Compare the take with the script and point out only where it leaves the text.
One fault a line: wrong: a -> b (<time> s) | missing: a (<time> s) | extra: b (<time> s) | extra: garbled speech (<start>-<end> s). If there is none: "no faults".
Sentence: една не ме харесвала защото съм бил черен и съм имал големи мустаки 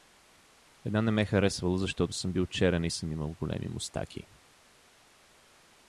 no faults